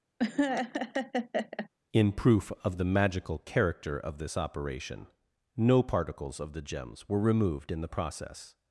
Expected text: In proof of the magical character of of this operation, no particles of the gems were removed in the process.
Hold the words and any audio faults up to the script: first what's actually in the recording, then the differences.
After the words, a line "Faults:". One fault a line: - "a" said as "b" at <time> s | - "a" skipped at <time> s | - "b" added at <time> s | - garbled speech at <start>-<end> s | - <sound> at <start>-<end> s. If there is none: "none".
In proof of the magical character of this operation, no particles of the gems were removed in the process.
Faults:
- laugh at 0.2-1.7 s
- "of" skipped at 4.2 s